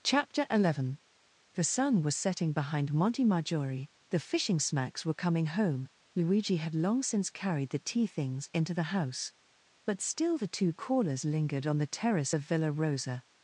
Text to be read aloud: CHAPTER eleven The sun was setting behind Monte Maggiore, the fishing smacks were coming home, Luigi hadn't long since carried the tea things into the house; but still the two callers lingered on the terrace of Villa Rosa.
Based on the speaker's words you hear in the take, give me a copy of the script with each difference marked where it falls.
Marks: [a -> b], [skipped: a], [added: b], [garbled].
CHAPTER eleven The sun was setting behind Monte Maggiore, the fishing smacks were coming home, Luigi [hadn't -> had] long since carried the tea things into the house; but still the two callers lingered on the terrace of Villa Rosa.